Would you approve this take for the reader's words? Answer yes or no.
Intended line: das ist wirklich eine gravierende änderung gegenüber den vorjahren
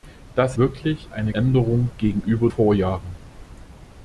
no